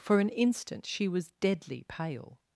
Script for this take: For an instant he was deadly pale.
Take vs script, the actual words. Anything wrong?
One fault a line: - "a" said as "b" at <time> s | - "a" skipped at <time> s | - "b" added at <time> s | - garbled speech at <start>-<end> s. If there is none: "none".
- "he" said as "she" at 0.9 s